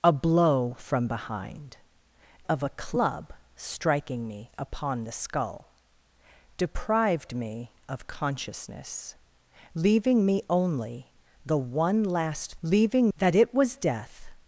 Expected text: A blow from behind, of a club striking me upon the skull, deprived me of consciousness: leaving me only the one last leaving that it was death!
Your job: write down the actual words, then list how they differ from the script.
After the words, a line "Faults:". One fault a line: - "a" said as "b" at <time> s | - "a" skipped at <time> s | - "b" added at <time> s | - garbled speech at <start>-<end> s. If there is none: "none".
A blow from behind, of a club striking me upon the skull, deprived me of consciousness: leaving me only the one last leaving that it was death!
Faults:
none